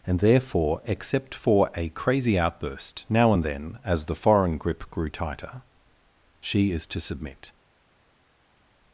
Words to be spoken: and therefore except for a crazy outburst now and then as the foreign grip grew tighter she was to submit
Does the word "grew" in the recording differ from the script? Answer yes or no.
no